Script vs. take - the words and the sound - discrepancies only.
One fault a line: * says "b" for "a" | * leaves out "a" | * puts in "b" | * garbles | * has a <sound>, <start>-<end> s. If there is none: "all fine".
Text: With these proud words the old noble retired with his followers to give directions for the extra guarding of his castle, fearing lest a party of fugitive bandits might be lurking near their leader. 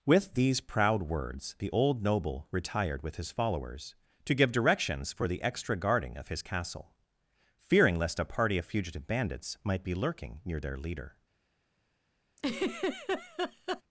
* has a laugh, 12.4-13.8 s